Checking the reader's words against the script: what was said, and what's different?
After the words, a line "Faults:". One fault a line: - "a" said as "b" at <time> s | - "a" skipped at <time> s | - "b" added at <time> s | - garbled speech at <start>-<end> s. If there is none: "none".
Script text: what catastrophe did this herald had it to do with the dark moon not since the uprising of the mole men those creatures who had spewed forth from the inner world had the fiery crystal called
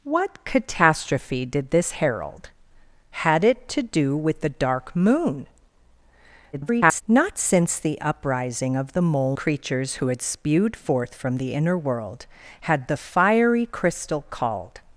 what catastrophe did this herald had it to do with the dark moon [garbled] not since the uprising of the mole creatures who had spewed forth from the inner world had the fiery crystal called
Faults:
- garbled speech at 6.5-7.0 s
- "men those" skipped at 9.4 s